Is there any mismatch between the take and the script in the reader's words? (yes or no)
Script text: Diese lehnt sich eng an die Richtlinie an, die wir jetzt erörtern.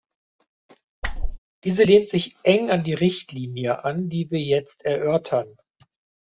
no